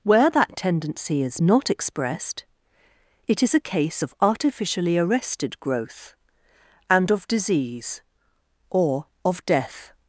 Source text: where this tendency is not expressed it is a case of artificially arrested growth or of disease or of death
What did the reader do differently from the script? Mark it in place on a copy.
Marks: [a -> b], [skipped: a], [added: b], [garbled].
where [this -> that] tendency is not expressed it is a case of artificially arrested growth [or -> and] of disease or of death